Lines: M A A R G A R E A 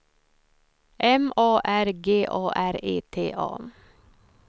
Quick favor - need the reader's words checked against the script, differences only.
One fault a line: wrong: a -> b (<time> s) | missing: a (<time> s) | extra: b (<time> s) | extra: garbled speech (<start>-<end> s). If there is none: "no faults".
missing: A (1.6 s)
extra: T (3.1 s)